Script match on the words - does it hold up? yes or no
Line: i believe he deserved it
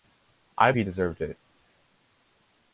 no